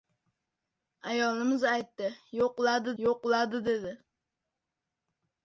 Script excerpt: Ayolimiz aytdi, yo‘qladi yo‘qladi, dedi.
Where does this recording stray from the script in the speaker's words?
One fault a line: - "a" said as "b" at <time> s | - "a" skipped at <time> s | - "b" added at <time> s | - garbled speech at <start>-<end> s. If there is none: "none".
none